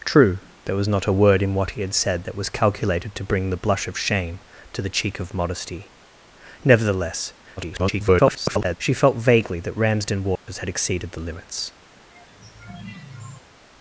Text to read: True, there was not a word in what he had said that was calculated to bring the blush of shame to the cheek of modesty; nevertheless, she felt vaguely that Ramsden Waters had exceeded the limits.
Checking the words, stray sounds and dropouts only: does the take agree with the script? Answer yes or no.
no